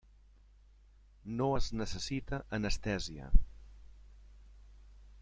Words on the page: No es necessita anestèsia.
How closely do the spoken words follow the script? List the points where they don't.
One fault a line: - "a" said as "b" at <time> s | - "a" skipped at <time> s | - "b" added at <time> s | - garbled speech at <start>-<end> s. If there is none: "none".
none